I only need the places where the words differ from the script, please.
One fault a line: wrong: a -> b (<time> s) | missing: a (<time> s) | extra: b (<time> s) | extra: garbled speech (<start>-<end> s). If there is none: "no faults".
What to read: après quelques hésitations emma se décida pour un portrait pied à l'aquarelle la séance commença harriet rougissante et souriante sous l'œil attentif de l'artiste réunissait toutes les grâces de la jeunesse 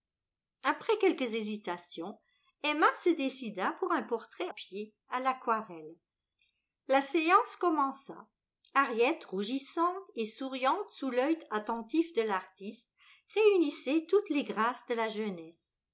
no faults